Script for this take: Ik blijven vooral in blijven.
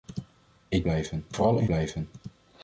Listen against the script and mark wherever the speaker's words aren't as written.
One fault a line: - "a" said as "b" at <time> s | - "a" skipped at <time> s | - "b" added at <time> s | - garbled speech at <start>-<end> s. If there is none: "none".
none